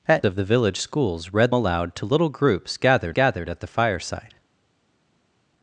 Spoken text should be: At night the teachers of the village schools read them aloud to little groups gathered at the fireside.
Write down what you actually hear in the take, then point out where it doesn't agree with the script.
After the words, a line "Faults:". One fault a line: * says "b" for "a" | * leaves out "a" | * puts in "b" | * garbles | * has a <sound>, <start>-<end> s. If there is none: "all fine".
At of the village schools read aloud to little groups gathered gathered at the fireside.
Faults:
* leaves out "night the teachers"
* leaves out "them"
* puts in "gathered"